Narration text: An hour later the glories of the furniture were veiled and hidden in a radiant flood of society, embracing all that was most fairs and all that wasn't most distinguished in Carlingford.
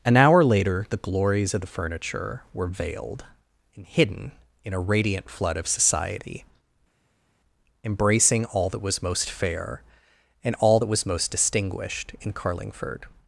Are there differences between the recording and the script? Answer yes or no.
yes